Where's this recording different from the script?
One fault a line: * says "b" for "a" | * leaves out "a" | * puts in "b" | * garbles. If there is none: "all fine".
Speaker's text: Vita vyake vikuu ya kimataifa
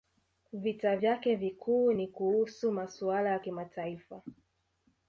* puts in "ni kuhusu masuala"